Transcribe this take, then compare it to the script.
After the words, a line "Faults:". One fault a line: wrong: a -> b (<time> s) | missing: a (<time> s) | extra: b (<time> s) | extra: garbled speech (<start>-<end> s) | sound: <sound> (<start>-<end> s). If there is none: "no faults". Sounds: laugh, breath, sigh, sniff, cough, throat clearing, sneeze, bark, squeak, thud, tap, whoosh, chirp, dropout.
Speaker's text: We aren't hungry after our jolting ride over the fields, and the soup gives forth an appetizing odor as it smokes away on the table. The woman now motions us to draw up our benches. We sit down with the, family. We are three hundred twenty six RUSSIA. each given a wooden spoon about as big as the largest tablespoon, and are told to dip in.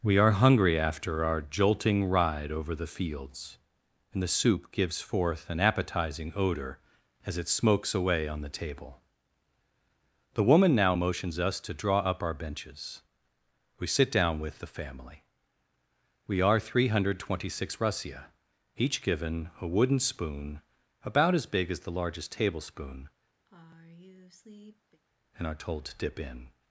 We are hungry after our jolting ride over the fields, and the soup gives forth an appetizing odor as it smokes away on the table. The woman now motions us to draw up our benches. We sit down with the, family. We are three hundred twenty six RUSSIA. each given a wooden spoon about as big as the largest tablespoon, and are told to dip in.
Faults:
wrong: aren't -> are (0.2 s)
sound: sigh (23.5-25.0 s)